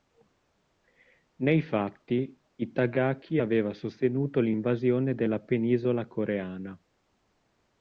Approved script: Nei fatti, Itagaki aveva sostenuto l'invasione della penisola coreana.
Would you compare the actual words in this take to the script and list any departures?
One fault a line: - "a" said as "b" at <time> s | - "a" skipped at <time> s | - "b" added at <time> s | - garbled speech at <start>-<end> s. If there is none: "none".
none